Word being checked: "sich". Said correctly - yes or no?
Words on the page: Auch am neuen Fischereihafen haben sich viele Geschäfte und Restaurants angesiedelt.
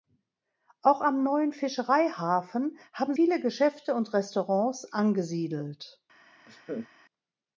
no